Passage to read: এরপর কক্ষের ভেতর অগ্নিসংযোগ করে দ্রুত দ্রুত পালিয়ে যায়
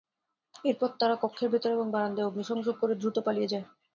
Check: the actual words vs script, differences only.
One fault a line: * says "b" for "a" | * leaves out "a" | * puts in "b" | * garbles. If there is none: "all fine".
* puts in "তারা"
* puts in "এবং বারান্দায়"
* leaves out "দ্রুত"